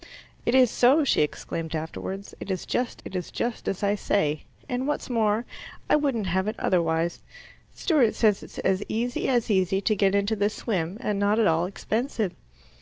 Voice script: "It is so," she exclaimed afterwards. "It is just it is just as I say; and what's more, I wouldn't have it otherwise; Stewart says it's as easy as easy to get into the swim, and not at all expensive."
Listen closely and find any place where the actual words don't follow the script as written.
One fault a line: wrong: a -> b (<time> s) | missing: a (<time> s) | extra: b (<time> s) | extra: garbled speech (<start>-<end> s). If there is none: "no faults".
no faults